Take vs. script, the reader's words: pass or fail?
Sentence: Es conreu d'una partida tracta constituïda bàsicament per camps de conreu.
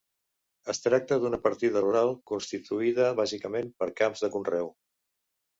fail